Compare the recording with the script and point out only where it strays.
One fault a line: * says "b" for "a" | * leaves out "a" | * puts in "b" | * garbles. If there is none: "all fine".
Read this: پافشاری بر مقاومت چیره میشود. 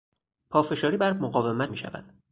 * leaves out "چیره"